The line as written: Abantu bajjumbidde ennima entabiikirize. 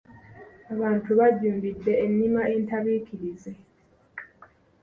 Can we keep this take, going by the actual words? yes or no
yes